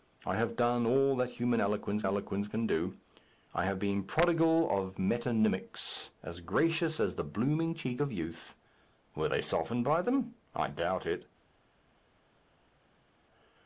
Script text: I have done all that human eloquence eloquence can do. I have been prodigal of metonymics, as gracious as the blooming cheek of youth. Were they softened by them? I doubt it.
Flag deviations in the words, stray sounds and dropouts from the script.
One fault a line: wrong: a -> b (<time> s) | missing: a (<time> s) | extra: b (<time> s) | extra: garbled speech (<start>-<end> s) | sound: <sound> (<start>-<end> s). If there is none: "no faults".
no faults